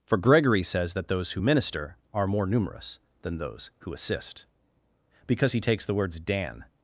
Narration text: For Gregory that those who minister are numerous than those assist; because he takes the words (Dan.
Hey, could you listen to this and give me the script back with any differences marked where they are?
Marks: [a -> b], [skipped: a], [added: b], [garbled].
For Gregory [added: says] that those who minister are [added: more] numerous than those [added: who] assist; because he takes the words (Dan.